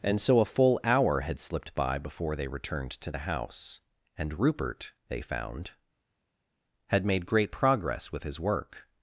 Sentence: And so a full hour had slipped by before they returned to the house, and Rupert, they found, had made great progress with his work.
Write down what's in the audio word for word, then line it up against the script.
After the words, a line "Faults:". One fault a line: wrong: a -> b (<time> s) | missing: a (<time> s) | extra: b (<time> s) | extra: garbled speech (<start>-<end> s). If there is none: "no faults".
And so a full hour had slipped by before they returned to the house, and Rupert, they found, had made great progress with his work.
Faults:
no faults